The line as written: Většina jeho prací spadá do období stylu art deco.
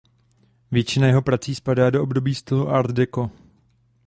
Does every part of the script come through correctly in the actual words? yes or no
yes